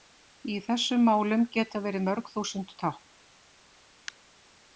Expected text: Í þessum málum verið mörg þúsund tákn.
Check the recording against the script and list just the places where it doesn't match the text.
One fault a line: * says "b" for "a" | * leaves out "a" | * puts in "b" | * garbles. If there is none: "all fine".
* puts in "geta"